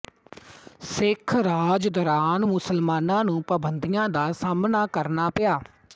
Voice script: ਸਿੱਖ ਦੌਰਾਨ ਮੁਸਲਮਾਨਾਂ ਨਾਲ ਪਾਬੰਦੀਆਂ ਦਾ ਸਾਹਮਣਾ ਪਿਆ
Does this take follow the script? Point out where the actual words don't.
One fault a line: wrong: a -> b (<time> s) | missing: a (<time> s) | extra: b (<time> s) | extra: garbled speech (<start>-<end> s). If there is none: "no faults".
extra: ਰਾਜ (1.4 s)
wrong: ਨਾਲ -> ਨੂੰ (3.2 s)
extra: ਕਰਨਾ (4.9 s)